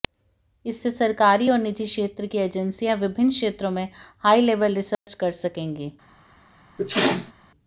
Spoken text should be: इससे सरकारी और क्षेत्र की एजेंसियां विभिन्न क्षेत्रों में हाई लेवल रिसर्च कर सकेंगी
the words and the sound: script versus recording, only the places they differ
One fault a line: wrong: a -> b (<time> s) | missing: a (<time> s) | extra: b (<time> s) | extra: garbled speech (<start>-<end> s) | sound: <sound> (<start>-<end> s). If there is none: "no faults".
extra: निजी (1.6 s)
sound: dropout (4.9-5.1 s)
sound: sneeze (6.8-7.3 s)